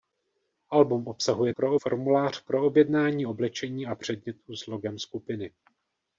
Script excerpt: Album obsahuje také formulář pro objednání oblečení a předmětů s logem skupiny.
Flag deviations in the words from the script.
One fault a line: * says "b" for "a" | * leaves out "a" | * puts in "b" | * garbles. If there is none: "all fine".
* says "pro" for "také"